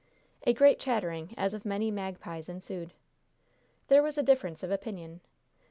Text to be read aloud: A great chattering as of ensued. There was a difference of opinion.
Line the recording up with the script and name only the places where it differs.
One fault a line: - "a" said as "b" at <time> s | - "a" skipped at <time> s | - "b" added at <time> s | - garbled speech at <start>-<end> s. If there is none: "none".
- "many magpies" added at 1.7 s